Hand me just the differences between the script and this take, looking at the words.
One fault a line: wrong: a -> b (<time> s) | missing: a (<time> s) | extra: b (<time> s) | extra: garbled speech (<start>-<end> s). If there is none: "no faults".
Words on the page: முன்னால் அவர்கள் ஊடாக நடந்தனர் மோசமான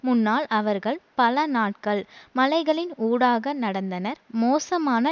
extra: பல நாட்கள் மலைகளின் (1.1 s)